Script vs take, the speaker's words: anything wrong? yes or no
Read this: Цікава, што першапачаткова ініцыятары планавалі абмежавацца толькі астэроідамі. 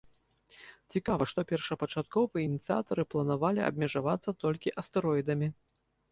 no